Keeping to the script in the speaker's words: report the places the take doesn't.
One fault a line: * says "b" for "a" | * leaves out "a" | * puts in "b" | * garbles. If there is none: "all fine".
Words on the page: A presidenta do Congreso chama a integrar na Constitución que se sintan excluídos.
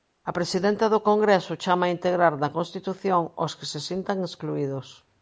* puts in "aos"